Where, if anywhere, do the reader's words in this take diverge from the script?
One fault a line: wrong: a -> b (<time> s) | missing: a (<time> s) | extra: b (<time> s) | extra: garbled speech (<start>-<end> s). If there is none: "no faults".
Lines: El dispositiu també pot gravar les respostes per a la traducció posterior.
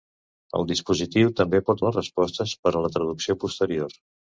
missing: gravar (1.8 s)